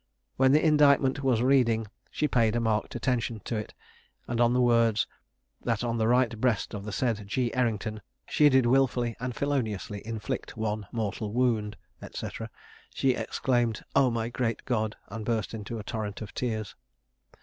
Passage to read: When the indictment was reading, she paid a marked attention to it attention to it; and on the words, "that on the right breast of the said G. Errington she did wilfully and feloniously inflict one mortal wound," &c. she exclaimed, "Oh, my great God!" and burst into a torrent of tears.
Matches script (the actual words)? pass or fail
fail